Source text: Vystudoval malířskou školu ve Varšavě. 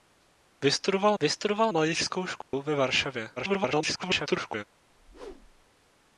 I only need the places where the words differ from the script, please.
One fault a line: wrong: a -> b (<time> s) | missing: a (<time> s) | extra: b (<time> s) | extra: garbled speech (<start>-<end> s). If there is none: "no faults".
extra: vystudoval (1.2 s)
extra: garbled speech (3.4-4.6 s)